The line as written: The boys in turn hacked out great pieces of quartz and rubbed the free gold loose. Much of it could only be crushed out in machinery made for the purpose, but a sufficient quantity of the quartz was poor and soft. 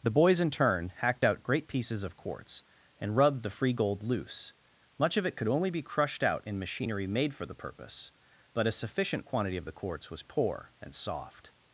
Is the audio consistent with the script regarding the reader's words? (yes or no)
yes